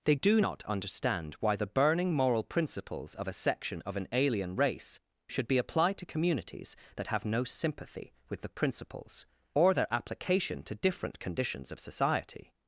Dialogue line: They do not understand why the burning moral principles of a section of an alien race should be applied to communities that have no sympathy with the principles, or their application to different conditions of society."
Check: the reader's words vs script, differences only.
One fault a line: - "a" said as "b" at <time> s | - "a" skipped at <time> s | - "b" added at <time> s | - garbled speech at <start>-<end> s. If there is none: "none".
none